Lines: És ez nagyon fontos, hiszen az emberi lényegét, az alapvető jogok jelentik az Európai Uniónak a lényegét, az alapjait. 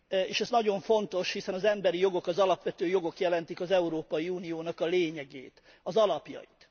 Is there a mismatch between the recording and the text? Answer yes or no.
yes